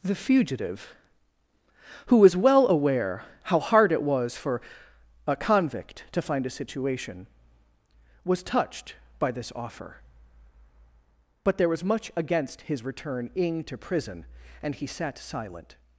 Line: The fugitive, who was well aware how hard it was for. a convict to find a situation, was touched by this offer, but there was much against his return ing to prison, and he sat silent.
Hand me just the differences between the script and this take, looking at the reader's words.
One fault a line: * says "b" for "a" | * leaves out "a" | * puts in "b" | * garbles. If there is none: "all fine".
all fine